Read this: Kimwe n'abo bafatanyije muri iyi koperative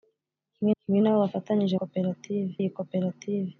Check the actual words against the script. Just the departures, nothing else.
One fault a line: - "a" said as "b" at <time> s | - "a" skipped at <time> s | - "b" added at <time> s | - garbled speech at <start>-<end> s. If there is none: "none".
- "kimwe" added at 0.8 s
- "muri" said as "koperative" at 1.8 s